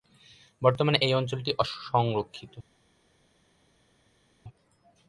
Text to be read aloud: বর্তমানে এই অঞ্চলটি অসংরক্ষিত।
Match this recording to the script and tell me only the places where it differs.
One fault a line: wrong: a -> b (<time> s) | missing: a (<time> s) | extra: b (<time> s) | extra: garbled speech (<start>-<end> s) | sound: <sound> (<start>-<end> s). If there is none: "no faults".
no faults